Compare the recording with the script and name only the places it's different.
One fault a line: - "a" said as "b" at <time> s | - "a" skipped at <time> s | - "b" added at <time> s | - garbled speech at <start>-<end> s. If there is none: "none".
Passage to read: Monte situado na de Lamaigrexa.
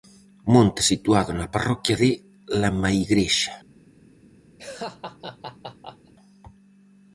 - "parroquia" added at 1.5 s